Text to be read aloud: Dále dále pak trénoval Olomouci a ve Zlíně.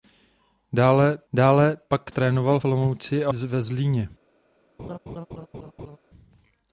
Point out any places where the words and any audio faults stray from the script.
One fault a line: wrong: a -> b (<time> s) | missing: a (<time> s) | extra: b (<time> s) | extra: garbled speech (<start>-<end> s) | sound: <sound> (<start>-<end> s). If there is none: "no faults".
sound: laugh (4.8-6.0 s)